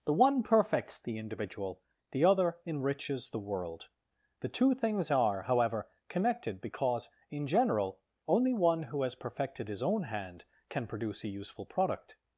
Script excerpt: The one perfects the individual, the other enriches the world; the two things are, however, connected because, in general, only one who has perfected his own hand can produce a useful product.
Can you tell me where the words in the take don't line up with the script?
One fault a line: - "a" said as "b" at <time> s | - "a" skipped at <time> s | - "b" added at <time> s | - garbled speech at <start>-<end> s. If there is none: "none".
none